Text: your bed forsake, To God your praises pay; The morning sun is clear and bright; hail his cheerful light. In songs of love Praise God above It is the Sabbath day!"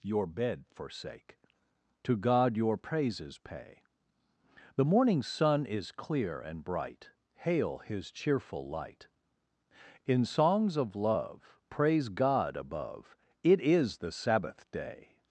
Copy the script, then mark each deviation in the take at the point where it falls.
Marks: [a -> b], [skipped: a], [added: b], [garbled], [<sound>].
your bed forsake, To God your praises pay; The morning sun is clear and bright; hail his cheerful light. In songs of love Praise God above It is the Sabbath day!"